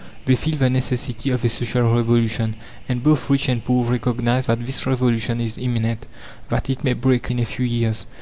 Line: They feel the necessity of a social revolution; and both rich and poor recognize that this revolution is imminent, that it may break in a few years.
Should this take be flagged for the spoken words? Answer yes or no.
no